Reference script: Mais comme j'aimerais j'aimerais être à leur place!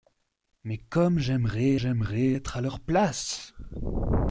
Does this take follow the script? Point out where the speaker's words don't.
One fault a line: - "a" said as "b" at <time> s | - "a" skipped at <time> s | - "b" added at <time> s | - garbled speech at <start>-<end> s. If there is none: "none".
none